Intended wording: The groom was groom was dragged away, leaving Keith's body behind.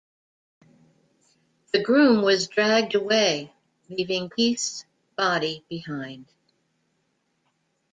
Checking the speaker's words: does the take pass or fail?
fail